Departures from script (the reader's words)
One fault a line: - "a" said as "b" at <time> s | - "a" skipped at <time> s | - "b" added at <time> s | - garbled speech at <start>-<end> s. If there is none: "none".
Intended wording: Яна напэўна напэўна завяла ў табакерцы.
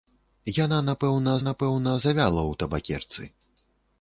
none